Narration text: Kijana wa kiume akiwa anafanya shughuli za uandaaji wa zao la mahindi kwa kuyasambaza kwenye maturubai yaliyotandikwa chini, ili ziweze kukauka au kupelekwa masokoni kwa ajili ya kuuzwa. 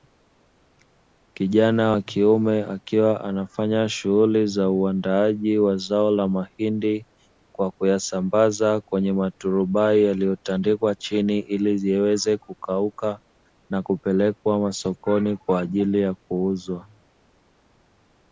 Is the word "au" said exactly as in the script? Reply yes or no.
no